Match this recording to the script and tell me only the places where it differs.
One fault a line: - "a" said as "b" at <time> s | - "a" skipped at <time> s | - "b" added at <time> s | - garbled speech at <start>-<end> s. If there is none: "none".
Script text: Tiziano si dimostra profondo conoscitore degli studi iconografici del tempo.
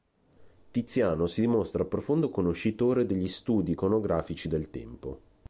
none